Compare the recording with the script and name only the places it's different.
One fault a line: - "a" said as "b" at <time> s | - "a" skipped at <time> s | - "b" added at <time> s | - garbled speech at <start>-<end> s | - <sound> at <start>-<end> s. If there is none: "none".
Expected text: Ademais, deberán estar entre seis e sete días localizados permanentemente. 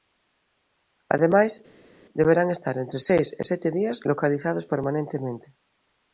none